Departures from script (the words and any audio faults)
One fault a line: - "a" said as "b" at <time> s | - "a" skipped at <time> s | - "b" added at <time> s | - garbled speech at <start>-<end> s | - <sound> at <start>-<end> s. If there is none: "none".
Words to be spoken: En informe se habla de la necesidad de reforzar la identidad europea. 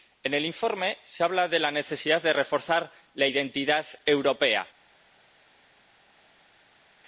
- "el" added at 0.3 s